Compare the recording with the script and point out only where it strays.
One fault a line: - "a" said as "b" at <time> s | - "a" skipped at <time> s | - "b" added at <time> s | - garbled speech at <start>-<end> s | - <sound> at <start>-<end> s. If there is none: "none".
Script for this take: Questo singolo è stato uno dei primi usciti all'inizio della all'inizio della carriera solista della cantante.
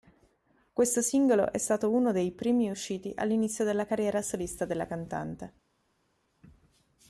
- "all'inizio della" skipped at 3.9 s